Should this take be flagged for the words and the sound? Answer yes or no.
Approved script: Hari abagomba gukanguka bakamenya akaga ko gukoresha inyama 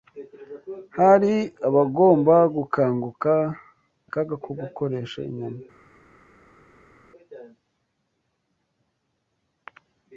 yes